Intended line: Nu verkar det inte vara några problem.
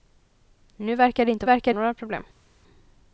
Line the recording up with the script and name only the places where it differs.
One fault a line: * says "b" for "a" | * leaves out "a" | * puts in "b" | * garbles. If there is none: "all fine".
* says "verkar" for "vara"